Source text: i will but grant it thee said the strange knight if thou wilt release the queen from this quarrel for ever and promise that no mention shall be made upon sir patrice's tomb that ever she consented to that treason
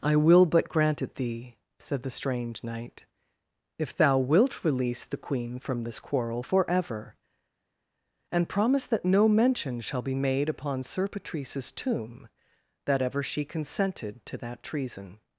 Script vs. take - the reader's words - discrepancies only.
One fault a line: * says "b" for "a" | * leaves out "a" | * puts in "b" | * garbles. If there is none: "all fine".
all fine